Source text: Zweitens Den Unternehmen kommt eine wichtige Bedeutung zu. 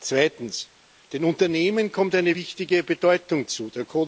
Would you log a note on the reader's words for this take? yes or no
no